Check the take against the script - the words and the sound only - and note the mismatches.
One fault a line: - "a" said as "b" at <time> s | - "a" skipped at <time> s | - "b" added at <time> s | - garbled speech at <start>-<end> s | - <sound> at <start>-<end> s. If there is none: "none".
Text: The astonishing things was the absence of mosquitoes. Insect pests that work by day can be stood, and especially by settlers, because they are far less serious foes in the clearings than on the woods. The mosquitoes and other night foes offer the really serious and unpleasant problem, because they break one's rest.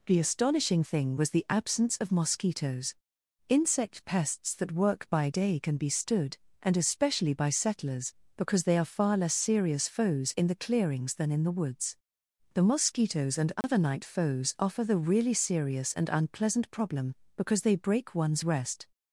- "things" said as "thing" at 0.8 s
- "on" said as "in" at 11.3 s
- dropout at 13.6-13.6 s